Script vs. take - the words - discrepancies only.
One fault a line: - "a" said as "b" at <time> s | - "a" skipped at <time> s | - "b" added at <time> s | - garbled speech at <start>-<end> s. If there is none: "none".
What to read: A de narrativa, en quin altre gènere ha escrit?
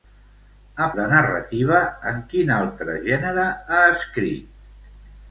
none